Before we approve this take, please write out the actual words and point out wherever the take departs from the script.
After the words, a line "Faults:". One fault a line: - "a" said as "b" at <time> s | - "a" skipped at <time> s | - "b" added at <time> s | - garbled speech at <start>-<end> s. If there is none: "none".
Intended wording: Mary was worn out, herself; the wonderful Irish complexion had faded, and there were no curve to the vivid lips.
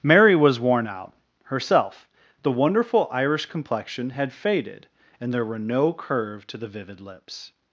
Mary was worn out, herself; the wonderful Irish complexion had faded, and there were no curve to the vivid lips.
Faults:
none